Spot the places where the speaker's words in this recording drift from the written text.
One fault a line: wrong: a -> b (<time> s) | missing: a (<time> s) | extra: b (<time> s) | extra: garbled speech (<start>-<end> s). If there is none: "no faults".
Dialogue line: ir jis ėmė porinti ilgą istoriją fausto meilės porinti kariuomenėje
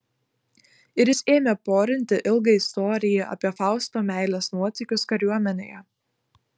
extra: apie (3.4 s)
wrong: porinti -> nuotykius (4.6 s)